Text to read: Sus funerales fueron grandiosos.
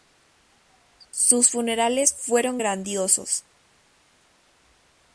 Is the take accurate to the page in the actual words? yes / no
yes